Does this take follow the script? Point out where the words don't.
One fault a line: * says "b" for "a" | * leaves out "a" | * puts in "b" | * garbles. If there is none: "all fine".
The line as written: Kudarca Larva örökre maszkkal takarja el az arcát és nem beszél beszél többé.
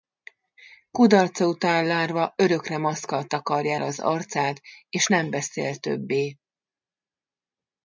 * puts in "után"
* leaves out "beszél"